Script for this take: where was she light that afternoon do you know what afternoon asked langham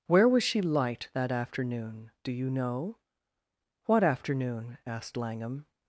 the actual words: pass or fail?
pass